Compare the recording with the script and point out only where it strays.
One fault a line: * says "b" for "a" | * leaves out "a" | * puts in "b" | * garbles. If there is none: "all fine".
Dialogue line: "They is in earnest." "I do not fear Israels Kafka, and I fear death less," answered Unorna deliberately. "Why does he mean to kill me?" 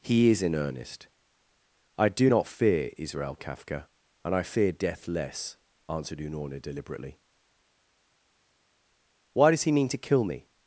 * says "He" for "They"
* says "Israel" for "Israels"